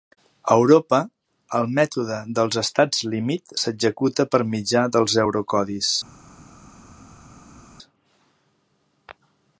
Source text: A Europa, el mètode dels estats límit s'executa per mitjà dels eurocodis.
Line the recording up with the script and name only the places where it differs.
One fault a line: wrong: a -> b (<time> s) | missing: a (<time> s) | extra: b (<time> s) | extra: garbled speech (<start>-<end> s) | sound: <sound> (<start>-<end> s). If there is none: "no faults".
no faults